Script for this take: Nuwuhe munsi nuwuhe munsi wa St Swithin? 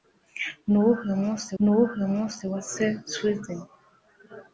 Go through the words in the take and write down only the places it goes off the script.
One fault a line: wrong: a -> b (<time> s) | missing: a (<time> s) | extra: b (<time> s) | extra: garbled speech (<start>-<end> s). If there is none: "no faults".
no faults